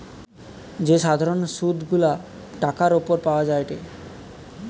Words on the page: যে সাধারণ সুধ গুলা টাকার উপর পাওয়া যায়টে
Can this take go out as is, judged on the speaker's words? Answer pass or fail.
pass